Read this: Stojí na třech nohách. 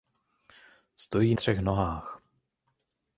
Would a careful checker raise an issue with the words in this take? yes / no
yes